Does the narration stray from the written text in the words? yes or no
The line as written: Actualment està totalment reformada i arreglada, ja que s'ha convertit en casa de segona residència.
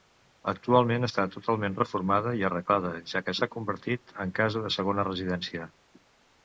no